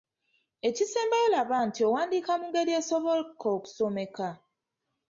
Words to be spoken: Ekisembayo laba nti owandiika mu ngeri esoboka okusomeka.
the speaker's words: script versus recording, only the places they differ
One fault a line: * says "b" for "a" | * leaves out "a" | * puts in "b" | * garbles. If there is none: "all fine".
all fine